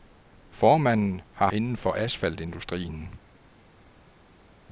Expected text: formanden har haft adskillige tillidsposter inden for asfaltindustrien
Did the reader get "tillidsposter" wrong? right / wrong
wrong